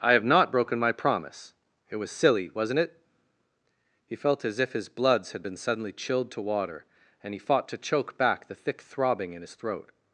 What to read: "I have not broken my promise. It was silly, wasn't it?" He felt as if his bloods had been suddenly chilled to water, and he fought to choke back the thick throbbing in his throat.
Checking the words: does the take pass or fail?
pass